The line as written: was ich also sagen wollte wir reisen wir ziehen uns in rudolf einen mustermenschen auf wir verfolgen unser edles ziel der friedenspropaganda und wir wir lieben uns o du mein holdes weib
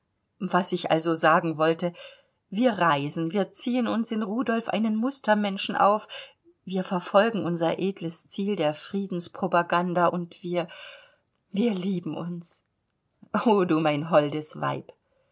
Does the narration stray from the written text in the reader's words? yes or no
no